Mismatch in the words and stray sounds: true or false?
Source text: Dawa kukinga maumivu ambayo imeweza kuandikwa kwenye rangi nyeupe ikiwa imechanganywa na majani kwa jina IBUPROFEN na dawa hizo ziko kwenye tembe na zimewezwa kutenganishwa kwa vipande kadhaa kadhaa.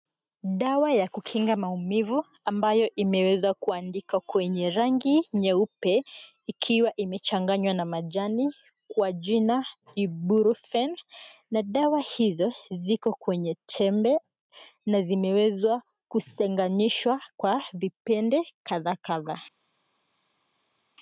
true